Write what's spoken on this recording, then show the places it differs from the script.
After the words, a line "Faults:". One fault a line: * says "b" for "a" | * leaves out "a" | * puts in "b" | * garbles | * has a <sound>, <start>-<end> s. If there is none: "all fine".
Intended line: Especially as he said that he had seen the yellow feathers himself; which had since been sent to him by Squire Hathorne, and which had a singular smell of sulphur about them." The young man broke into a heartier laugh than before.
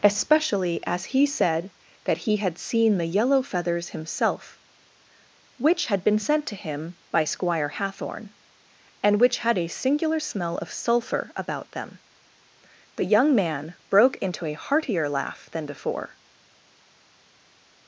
Especially as he said that he had seen the yellow feathers himself; which had been sent to him by Squire Hathorne, and which had a singular smell of sulphur about them." The young man broke into a heartier laugh than before.
Faults:
* leaves out "since"